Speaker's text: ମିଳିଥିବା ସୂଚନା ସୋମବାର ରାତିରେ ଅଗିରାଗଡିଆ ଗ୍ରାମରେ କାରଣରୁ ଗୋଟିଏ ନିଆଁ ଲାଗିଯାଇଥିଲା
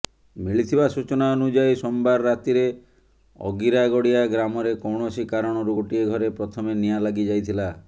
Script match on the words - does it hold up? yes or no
no